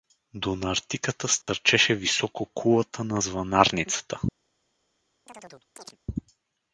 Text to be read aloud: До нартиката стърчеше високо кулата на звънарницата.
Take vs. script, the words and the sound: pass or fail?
fail